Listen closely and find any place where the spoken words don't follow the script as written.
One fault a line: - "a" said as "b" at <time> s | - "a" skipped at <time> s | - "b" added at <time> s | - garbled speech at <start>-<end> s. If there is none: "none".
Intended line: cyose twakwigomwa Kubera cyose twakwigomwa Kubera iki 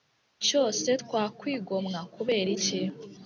- "cyose twakwigomwa Kubera" skipped at 2.5 s